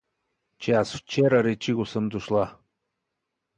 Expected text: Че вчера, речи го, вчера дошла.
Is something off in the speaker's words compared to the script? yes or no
yes